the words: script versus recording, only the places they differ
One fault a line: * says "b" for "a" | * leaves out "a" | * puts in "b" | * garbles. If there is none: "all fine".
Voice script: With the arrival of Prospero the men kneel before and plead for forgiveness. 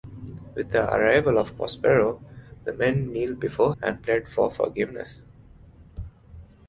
all fine